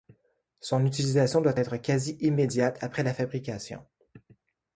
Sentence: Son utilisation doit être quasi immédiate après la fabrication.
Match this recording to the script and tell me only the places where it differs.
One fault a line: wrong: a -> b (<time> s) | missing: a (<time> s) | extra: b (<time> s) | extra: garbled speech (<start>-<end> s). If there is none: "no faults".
no faults